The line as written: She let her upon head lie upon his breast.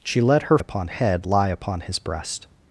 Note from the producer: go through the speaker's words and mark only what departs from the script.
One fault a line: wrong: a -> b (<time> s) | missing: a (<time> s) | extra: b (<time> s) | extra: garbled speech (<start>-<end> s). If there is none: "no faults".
no faults